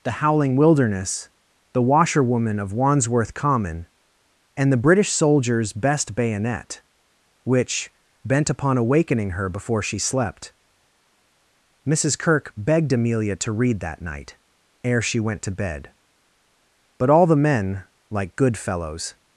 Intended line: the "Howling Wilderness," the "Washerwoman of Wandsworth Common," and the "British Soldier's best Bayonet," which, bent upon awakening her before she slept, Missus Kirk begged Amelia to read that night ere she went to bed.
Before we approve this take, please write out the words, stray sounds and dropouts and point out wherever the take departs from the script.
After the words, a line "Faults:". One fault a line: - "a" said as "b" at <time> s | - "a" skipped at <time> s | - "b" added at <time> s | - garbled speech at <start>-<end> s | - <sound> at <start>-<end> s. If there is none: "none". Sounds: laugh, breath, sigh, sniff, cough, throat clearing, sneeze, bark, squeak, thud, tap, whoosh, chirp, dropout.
the "Howling Wilderness," the "Washerwoman of Wandsworth Common," and the "British Soldier's best Bayonet," which, bent upon awakening her before she slept, Missus Kirk begged Amelia to read that night ere she went to bed. But all the men, like good fellows
Faults:
- "But all the men like good fellows" added at 17.0 s